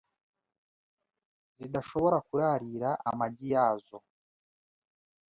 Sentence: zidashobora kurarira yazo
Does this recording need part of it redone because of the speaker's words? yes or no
yes